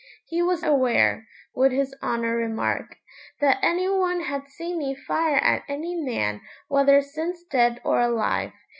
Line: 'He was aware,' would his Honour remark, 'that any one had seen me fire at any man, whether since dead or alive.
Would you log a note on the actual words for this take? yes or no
no